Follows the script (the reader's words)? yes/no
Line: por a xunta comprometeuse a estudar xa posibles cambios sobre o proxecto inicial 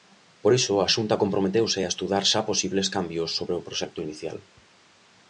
no